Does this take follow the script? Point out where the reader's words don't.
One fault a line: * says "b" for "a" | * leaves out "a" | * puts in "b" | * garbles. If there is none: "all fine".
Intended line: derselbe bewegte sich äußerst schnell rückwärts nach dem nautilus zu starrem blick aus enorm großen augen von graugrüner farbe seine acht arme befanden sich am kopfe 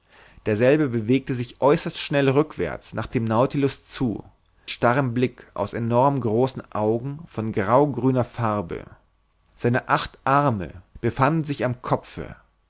all fine